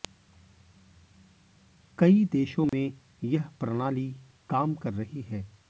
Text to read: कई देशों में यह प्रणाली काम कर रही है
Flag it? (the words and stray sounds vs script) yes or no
yes